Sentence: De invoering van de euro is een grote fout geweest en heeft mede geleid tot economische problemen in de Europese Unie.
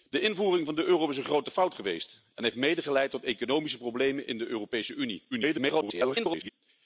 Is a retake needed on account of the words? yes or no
yes